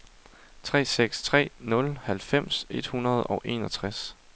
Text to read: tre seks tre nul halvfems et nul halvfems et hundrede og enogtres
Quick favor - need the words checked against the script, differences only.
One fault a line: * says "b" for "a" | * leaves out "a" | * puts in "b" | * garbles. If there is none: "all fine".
* leaves out "nul halvfems et"